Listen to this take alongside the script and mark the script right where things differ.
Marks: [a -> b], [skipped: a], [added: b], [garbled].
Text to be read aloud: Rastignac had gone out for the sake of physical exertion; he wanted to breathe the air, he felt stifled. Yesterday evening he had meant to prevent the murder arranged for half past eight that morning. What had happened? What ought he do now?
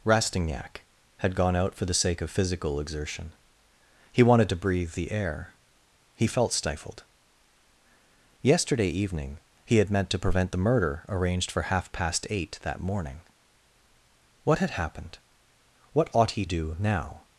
Rastignac had gone out for the sake of physical exertion; he wanted to breathe the air, he felt stifled. Yesterday evening he had meant to prevent the murder arranged for half past eight that morning. What had happened? What ought he do now?